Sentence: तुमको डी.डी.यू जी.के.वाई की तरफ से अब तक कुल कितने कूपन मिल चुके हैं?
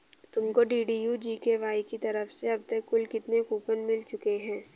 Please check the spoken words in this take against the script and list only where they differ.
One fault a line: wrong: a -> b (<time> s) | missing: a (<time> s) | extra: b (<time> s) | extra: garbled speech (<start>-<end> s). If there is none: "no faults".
no faults